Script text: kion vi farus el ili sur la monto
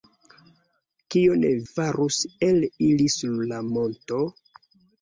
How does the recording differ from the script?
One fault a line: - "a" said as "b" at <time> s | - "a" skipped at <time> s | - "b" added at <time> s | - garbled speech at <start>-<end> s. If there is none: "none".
- "vi" skipped at 1.4 s